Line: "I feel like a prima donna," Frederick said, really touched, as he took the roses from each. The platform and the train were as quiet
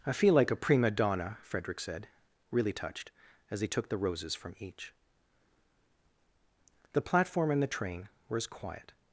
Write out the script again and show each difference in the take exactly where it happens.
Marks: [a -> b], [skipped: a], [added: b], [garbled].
"I feel like a prima donna," Frederick said, really touched, as he took the roses from each. The platform and the train were as quiet